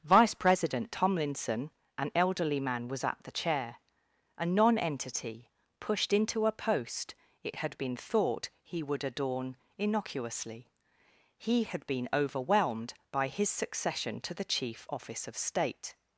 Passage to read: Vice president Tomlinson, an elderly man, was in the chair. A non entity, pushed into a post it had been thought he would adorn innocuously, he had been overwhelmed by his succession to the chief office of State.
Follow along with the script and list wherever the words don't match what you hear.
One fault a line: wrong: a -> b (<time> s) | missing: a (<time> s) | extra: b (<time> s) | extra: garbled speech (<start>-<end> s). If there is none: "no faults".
wrong: in -> at (3.0 s)